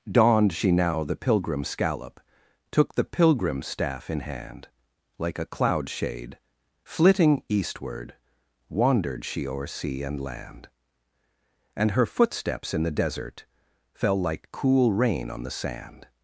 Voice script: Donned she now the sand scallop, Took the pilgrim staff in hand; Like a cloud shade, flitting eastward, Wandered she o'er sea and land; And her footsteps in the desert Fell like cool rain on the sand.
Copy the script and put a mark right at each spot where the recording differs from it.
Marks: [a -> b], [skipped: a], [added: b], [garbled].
Donned she now the [sand -> pilgrim] scallop, Took the pilgrim staff in hand; Like a cloud shade, flitting eastward, Wandered she o'er sea and land; And her footsteps in the desert Fell like cool rain on the sand.